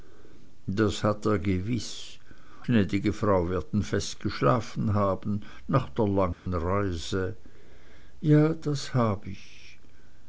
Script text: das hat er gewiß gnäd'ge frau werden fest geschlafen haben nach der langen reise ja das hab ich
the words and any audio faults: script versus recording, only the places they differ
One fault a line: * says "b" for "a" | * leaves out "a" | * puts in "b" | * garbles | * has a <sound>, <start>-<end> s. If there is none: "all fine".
* has a dropout, 6.3-6.5 s